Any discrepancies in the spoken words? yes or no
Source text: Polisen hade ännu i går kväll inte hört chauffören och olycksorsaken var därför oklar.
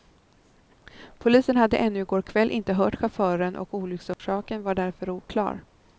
no